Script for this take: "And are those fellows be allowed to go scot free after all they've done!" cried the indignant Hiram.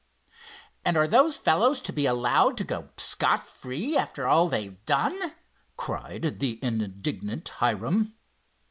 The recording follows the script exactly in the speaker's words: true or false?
false